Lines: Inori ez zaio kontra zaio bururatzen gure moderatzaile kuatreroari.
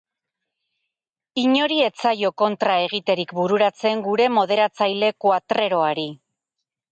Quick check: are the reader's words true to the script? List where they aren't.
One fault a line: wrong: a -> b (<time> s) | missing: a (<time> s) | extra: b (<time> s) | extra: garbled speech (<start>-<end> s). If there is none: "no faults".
wrong: zaio -> egiterik (2.9 s)